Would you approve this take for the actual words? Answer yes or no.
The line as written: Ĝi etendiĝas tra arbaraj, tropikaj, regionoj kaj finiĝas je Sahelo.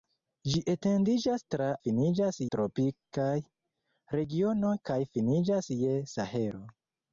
no